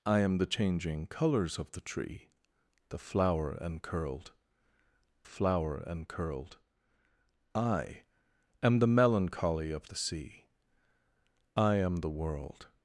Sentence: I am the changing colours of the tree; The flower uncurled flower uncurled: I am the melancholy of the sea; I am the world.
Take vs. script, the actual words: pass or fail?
pass